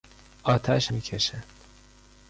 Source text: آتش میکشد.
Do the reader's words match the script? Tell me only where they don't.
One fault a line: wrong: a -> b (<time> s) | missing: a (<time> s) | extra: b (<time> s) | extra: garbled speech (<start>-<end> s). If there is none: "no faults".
no faults